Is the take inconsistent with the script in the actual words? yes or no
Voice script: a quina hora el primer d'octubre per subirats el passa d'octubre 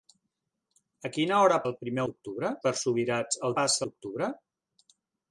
no